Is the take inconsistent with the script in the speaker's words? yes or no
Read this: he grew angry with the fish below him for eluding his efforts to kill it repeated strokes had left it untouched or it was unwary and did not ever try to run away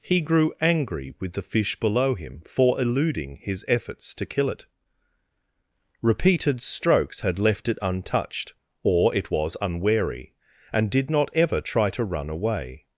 no